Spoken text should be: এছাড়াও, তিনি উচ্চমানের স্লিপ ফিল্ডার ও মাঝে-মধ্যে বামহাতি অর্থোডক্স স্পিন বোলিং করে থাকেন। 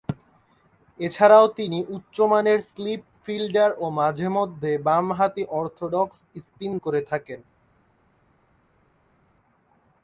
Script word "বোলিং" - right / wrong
wrong